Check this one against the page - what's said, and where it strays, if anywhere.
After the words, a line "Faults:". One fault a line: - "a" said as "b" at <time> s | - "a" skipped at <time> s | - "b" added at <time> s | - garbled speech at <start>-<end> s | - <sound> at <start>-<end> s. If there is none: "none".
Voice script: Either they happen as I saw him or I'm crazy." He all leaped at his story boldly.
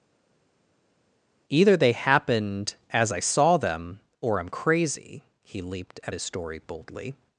Either they happened as I saw them or I'm crazy." He leaped at his story boldly.
Faults:
- "happen" said as "happened" at 1.9 s
- "him" said as "them" at 3.6 s
- "all" skipped at 5.6 s